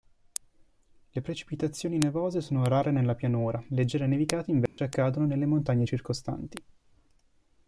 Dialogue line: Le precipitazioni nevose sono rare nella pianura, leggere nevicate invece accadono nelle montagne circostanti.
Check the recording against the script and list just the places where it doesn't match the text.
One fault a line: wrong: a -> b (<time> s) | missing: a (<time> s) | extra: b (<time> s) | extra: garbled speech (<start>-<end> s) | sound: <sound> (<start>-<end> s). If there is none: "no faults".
sound: dropout (4.7-4.8 s)